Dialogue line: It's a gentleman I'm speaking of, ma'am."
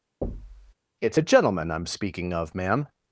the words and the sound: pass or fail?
fail